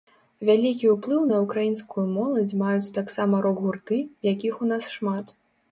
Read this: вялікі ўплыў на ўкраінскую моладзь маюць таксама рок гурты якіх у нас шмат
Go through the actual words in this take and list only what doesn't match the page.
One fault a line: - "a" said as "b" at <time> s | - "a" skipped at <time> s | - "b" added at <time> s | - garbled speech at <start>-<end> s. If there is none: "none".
none